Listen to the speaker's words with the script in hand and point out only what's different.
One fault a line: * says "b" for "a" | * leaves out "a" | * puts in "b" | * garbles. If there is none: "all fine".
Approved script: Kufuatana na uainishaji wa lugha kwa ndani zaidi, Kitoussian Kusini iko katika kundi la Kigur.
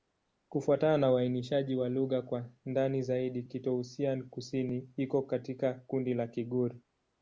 all fine